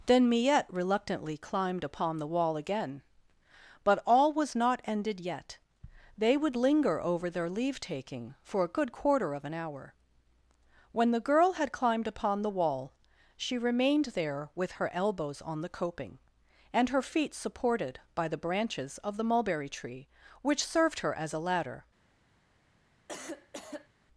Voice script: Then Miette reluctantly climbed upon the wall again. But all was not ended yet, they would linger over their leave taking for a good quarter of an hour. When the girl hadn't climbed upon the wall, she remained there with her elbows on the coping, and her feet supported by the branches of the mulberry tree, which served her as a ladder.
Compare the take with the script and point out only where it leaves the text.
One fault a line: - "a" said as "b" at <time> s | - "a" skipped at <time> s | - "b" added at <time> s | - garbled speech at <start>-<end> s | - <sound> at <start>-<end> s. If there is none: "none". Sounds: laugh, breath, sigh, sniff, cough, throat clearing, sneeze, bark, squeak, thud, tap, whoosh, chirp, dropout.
- "hadn't" said as "had" at 11.5 s
- cough at 23.1-23.9 s